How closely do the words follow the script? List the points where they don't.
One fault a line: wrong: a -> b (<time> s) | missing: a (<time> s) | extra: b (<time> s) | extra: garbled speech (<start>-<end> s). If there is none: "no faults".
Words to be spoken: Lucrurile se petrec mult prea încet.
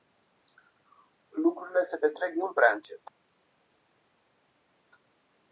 no faults